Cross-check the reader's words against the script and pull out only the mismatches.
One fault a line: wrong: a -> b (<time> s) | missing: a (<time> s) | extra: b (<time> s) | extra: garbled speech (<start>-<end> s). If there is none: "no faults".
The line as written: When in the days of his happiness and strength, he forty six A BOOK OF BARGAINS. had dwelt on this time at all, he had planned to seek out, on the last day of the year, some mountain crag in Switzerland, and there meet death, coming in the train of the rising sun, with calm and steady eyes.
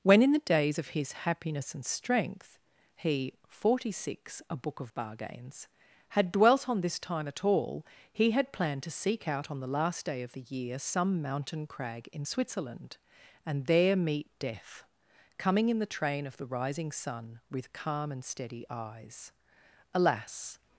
extra: Alas (19.9 s)